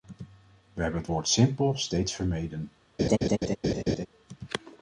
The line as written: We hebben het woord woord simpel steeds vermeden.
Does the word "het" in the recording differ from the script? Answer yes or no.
no